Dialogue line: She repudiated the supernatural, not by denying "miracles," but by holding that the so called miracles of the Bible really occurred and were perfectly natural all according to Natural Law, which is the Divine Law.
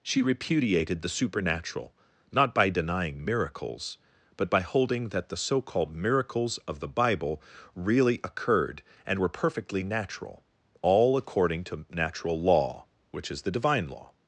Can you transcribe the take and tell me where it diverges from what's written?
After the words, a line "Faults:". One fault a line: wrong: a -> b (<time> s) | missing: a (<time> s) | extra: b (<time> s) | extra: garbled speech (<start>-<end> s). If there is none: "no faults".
She repudiated the supernatural, not by denying "miracles," but by holding that the so called miracles of the Bible really occurred and were perfectly natural all according to Natural Law, which is the Divine Law.
Faults:
no faults